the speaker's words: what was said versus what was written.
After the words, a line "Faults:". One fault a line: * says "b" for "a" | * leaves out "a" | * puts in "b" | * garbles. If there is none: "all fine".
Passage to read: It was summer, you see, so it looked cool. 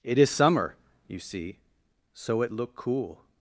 It is summer, you see, so it look cool.
Faults:
* says "is" for "was"
* says "look" for "looked"